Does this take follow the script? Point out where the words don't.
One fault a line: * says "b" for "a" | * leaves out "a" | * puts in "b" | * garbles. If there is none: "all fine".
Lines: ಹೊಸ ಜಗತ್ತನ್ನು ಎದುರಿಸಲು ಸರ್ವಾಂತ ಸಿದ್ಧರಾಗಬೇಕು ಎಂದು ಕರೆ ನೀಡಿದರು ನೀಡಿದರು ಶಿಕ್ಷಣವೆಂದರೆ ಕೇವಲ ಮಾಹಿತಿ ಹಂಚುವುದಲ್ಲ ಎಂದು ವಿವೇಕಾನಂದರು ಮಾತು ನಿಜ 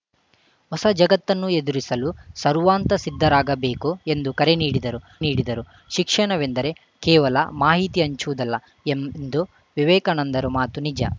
all fine